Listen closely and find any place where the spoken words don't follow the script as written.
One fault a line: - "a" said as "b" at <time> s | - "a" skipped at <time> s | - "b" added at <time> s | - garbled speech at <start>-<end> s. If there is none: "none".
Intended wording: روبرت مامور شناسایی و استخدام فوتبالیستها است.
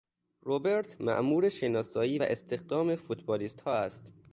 none